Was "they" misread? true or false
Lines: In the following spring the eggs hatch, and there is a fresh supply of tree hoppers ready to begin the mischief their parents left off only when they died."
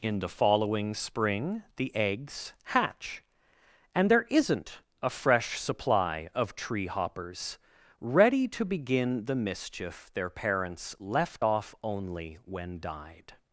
true